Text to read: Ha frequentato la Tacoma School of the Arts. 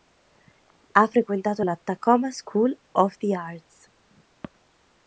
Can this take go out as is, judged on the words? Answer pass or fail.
pass